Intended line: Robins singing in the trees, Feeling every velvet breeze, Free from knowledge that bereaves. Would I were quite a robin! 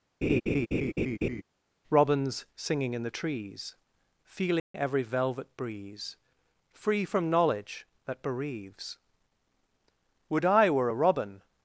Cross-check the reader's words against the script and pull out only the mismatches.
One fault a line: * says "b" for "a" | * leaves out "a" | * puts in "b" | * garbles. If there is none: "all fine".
* leaves out "quite"